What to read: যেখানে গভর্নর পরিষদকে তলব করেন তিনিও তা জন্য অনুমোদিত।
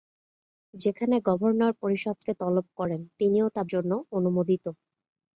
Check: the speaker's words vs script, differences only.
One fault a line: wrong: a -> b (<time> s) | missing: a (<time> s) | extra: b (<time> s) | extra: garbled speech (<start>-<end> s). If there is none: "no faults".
no faults